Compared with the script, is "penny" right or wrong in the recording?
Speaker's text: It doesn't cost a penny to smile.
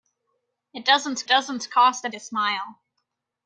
wrong